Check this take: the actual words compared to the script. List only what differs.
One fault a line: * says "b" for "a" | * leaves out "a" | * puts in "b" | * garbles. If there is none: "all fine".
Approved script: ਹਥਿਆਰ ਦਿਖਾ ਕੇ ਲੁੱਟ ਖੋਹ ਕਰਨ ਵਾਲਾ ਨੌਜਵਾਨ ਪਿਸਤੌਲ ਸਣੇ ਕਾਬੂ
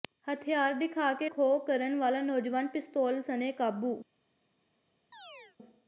* leaves out "ਲੁੱਟ"